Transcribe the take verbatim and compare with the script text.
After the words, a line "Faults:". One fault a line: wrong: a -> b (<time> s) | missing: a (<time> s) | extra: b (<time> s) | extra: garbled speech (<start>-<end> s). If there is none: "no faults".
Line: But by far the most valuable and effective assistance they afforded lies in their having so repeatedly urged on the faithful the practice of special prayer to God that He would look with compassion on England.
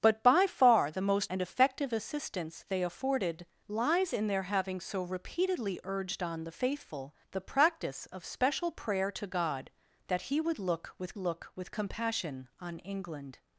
But by far the most and effective assistance they afforded lies in their having so repeatedly urged on the faithful the practice of special prayer to God that He would look with look with compassion on England.
Faults:
missing: valuable (1.3 s)
extra: look with (11.2 s)